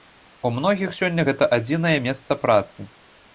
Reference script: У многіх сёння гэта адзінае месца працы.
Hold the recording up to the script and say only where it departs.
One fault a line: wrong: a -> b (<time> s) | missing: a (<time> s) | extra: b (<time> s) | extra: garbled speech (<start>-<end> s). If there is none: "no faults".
no faults